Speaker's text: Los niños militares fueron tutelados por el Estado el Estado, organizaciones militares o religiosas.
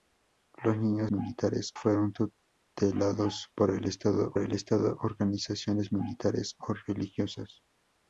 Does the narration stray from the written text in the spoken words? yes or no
no